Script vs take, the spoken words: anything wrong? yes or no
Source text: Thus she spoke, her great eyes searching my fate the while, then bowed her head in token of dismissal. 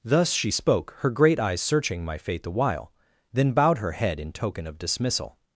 no